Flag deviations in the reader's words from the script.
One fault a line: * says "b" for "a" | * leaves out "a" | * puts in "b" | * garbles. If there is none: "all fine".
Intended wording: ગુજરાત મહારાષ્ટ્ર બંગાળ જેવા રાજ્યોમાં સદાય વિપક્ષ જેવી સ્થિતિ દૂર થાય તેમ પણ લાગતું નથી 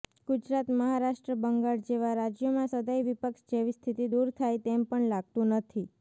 all fine